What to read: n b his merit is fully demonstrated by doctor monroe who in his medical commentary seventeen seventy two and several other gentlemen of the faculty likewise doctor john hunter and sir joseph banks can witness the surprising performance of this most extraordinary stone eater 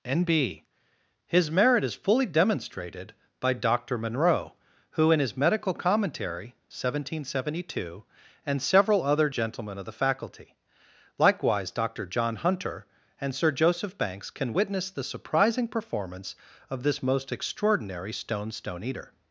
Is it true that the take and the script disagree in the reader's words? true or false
true